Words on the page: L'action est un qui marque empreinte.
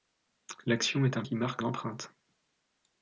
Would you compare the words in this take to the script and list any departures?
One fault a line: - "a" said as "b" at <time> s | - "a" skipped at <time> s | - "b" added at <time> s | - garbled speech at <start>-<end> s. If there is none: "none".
none